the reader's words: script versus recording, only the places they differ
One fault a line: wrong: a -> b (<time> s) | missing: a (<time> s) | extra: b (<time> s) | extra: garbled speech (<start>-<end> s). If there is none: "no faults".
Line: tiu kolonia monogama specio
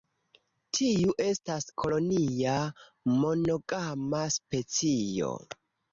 extra: estas (1.2 s)